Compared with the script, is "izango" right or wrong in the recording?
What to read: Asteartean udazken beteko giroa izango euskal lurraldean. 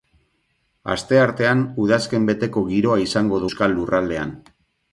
right